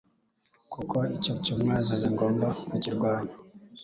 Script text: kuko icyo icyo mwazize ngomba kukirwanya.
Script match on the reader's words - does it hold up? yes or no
yes